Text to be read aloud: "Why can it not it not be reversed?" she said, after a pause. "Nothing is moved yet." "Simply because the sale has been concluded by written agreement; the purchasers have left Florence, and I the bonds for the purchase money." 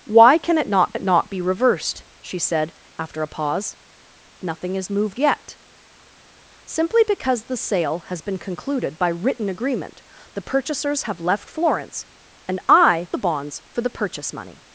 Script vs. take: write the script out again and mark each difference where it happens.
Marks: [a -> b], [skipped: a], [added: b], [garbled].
"Why can it not it not be reversed?" she said, after a pause. "Nothing is moved yet." "Simply because the sale has been concluded by written agreement; the purchasers have left Florence, and I the bonds for the purchase money."